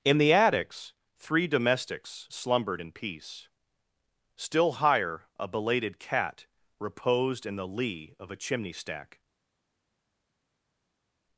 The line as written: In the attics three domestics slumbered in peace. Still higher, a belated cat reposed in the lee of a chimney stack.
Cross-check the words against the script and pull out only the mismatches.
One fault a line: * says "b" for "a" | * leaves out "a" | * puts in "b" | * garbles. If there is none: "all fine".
all fine